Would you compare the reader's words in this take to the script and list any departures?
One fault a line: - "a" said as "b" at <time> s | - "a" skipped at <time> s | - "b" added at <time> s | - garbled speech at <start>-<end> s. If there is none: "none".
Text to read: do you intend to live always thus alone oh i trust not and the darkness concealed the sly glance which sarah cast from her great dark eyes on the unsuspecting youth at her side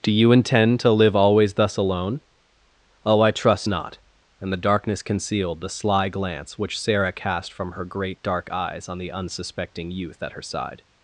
none